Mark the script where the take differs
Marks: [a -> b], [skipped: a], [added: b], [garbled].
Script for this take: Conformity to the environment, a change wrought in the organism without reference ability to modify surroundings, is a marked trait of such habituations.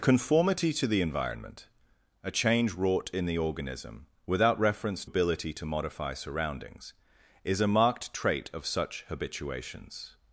Conformity to the environment, a change wrought in the organism without reference ability to modify surroundings, is a marked trait of such habituations.